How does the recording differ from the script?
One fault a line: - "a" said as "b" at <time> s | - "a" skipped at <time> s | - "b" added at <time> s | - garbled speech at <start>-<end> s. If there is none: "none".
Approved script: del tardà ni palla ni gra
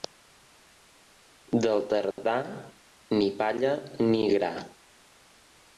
none